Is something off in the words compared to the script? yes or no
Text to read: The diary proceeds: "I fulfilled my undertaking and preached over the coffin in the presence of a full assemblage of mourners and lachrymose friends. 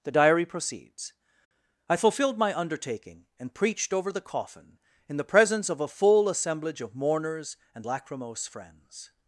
no